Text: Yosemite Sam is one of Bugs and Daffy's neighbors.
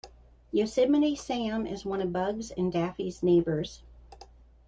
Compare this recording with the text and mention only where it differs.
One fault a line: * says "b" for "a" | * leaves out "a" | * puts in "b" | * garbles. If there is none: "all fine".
all fine